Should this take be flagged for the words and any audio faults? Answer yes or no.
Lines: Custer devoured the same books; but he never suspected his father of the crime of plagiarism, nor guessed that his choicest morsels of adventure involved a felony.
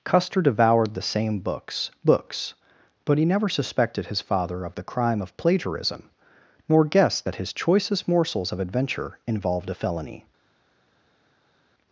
yes